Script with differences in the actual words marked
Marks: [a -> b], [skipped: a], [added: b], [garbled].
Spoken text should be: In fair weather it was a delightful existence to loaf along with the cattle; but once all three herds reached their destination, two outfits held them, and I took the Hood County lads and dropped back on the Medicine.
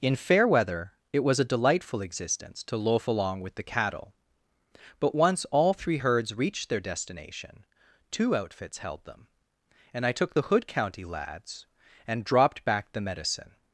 In fair weather it was a delightful existence to loaf along with the cattle; but once all three herds reached their destination, two outfits held them, and I took the Hood County lads and dropped back [skipped: on] the Medicine.